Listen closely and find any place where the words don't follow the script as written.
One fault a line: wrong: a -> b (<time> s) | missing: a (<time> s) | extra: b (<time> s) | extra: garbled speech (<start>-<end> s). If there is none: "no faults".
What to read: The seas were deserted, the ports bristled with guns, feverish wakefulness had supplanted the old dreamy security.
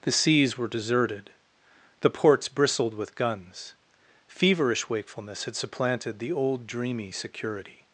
no faults